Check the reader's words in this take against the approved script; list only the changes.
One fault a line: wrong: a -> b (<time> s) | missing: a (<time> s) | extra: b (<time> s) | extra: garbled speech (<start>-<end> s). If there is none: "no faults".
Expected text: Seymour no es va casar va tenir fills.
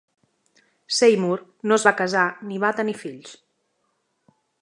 extra: ni (2.5 s)